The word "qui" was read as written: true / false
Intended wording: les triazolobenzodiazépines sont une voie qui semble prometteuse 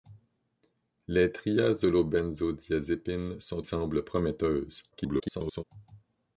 false